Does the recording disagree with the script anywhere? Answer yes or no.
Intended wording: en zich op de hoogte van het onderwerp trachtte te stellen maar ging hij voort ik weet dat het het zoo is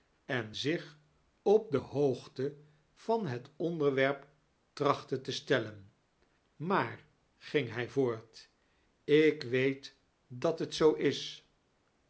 yes